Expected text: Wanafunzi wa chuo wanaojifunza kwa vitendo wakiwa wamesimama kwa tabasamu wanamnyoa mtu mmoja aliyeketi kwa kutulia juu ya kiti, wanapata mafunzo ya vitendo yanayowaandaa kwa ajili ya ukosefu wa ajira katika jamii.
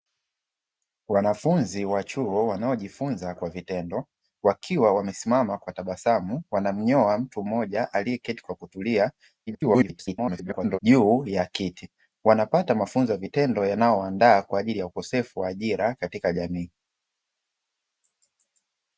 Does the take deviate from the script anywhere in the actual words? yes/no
yes